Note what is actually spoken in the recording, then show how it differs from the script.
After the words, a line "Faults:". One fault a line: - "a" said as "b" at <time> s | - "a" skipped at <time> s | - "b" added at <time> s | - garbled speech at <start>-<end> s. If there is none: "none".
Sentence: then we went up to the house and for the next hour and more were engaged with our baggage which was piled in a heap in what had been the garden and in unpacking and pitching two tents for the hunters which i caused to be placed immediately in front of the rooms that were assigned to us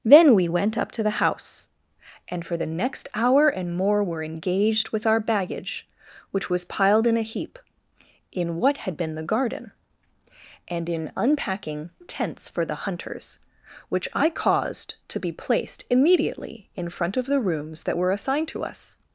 then we went up to the house and for the next hour and more were engaged with our baggage which was piled in a heap in what had been the garden and in unpacking tents for the hunters which i caused to be placed immediately in front of the rooms that were assigned to us
Faults:
- "and pitching two" skipped at 11.9 s